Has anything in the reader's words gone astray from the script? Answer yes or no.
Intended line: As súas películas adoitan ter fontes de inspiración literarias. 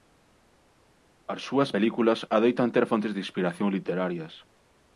no